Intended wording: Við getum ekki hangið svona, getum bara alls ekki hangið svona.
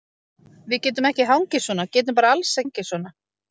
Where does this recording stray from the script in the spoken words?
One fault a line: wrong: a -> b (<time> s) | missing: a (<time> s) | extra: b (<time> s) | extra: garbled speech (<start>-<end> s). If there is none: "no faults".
missing: ekki (2.6 s)